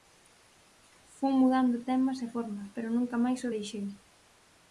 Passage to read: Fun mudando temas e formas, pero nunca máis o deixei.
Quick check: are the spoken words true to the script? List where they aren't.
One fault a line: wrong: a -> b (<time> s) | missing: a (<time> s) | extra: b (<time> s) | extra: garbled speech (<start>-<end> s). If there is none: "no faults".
no faults